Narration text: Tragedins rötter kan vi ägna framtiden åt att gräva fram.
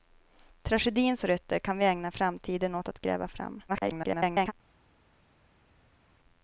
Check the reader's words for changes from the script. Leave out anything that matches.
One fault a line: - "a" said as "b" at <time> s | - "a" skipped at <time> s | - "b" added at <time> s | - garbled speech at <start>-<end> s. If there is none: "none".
- garbled speech at 3.7-4.5 s